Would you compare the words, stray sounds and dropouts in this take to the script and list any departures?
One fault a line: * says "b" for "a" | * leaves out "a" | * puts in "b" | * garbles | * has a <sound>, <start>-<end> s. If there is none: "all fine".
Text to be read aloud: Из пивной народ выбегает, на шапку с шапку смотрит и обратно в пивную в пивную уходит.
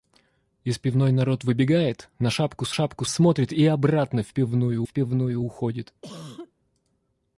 * has a cough, 6.0-6.5 s